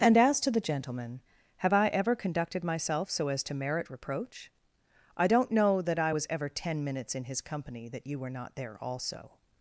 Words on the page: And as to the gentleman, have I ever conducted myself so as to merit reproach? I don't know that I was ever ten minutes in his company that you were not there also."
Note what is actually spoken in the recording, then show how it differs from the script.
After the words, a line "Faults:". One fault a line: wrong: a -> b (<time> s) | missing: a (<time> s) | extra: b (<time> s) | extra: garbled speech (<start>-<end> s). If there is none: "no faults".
And as to the gentleman, have I ever conducted myself so as to merit reproach? I don't know that I was ever ten minutes in his company that you were not there also."
Faults:
no faults